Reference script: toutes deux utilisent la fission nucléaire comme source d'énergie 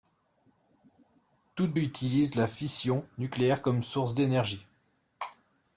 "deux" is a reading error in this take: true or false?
true